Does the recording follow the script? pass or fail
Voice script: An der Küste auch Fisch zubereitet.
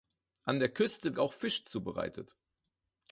pass